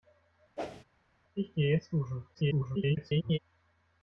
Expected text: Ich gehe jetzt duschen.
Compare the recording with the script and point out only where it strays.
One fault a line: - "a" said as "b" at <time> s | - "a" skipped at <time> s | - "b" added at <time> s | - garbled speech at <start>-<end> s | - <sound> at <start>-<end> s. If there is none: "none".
- whoosh at 0.6-0.8 s
- garbled speech at 2.3-3.4 s